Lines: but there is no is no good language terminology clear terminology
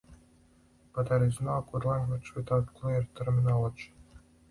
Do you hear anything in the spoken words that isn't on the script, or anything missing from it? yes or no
yes